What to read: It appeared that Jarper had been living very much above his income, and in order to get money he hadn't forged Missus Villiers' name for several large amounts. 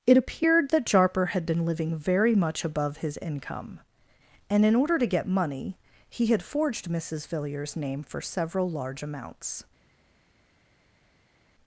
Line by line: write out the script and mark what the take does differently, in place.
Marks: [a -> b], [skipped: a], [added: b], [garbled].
It appeared that Jarper had been living very much above his income, and in order to get money he [hadn't -> had] forged Missus Villiers' name for several large amounts.